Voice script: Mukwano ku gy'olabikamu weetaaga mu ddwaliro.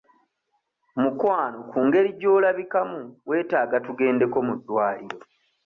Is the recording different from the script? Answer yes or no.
yes